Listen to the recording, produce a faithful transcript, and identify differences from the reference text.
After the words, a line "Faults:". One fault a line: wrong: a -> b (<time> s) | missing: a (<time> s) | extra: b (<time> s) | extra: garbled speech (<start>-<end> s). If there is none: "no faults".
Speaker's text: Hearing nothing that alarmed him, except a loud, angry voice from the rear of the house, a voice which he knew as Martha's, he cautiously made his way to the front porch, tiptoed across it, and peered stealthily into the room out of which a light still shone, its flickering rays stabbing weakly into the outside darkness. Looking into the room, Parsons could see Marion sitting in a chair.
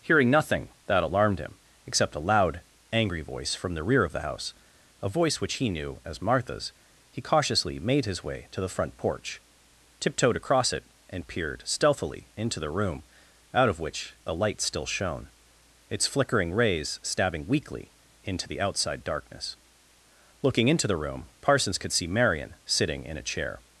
Hearing nothing that alarmed him, except a loud, angry voice from the rear of the house, a voice which he knew as Martha's, he cautiously made his way to the front porch, tiptoed across it, and peered stealthily into the room out of which a light still shone, its flickering rays stabbing weakly into the outside darkness. Looking into the room, Parsons could see Marion sitting in a chair.
Faults:
no faults